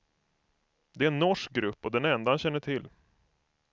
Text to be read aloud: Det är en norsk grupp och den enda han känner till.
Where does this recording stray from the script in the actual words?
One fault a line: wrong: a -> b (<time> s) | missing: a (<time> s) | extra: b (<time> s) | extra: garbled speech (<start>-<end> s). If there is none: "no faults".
no faults